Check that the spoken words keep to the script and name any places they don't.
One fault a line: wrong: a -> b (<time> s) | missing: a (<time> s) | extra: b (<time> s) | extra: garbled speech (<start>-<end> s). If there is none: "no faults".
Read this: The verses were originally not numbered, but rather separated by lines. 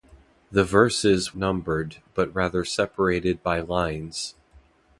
missing: were originally not (1.4 s)